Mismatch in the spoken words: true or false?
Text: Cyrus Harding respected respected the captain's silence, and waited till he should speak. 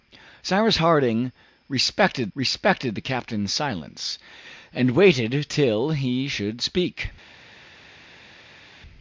false